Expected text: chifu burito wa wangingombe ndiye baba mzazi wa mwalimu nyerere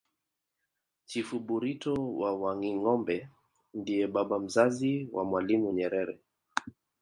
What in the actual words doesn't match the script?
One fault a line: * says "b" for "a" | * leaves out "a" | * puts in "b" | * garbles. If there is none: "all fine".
all fine